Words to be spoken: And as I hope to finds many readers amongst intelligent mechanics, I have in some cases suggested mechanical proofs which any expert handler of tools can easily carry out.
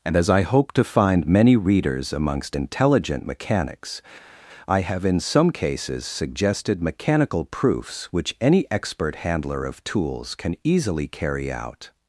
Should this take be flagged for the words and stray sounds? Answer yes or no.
yes